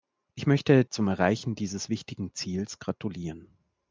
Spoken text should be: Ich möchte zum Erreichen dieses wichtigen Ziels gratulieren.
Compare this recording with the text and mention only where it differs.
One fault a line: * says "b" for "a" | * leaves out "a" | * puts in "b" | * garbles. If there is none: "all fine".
all fine